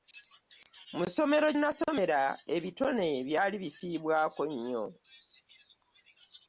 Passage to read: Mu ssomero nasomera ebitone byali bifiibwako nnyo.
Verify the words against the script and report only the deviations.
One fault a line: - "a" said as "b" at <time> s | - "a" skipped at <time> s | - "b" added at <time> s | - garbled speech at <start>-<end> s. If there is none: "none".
none